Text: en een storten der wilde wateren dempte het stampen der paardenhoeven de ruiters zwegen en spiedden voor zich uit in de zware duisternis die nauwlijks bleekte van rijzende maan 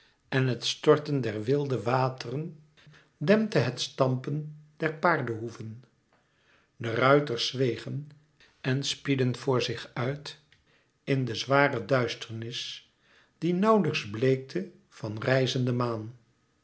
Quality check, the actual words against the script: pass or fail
fail